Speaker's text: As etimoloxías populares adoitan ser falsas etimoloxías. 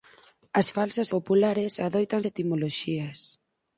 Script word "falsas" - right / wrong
wrong